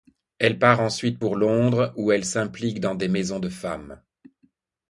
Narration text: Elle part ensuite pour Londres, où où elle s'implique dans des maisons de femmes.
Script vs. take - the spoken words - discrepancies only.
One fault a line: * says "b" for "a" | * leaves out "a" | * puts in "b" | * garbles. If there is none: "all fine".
* leaves out "où"